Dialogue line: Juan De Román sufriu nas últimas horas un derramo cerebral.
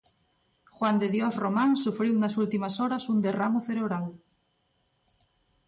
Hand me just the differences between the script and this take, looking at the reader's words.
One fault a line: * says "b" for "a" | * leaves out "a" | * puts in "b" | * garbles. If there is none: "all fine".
* puts in "Dios"